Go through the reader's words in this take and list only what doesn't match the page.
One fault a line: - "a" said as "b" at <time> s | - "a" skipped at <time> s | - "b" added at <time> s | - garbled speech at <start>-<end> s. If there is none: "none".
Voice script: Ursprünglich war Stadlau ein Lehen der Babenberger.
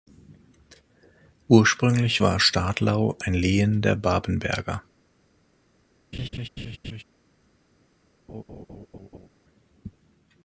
none